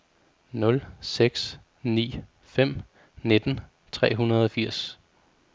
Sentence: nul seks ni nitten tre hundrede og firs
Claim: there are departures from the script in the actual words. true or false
true